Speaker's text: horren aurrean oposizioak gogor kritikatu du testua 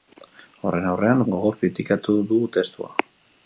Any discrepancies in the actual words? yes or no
yes